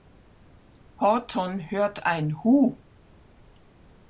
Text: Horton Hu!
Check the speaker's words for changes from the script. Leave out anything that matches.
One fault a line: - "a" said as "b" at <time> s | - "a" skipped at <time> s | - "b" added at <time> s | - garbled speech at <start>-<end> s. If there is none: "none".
- "hört ein" added at 1.7 s